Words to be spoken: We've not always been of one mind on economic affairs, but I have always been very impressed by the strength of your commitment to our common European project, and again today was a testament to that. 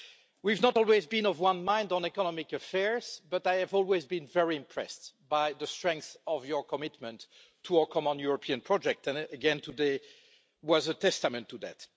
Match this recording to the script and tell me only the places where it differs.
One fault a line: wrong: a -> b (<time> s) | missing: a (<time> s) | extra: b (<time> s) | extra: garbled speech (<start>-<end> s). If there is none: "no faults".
no faults